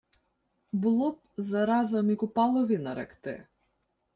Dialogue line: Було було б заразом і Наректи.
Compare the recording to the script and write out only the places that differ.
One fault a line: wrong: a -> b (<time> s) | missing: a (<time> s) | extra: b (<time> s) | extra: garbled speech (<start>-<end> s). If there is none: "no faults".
missing: було (1.1 s)
extra: Купалові (2.1 s)